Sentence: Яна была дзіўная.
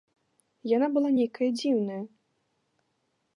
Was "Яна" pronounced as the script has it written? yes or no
yes